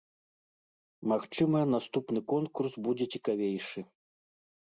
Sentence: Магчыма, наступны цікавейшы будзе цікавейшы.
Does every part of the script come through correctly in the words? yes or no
no